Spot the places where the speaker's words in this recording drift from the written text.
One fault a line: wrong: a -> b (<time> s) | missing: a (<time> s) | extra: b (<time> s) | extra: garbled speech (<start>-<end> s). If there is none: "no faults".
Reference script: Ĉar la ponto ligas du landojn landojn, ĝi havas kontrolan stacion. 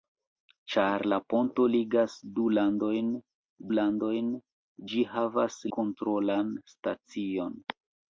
no faults